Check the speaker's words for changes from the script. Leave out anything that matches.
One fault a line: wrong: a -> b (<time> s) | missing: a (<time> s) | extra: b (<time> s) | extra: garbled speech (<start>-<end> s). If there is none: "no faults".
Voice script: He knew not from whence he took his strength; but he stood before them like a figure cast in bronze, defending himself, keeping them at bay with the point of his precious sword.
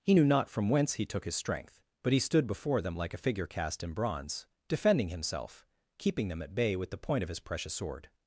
no faults